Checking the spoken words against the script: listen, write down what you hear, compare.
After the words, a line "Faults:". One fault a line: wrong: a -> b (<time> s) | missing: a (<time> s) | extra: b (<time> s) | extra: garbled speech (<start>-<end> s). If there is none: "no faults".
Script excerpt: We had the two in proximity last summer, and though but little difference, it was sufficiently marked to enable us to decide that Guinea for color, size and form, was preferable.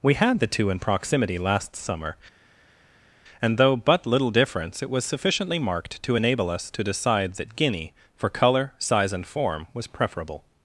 We had the two in proximity last summer, and though but little difference, it was sufficiently marked to enable us to decide that Guinea for color, size and form, was preferable.
Faults:
no faults